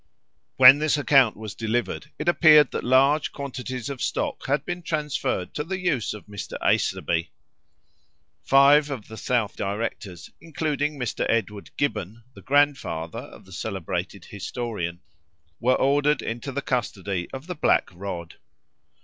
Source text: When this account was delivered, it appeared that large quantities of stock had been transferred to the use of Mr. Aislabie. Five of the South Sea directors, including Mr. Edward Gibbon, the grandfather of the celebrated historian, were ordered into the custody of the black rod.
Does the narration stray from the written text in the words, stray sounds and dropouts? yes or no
yes